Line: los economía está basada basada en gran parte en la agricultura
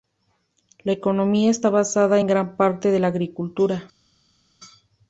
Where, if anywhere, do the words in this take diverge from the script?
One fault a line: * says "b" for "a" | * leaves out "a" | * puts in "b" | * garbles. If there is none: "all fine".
* says "la" for "los"
* leaves out "basada"